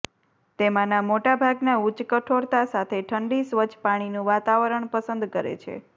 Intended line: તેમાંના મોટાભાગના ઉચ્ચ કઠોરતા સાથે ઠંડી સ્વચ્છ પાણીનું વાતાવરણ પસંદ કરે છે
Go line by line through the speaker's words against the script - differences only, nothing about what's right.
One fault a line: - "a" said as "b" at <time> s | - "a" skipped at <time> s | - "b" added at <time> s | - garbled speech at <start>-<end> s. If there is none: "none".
none